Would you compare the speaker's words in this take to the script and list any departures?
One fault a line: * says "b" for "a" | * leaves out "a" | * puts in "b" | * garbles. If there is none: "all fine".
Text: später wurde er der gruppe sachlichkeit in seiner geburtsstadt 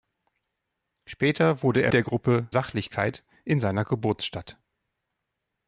all fine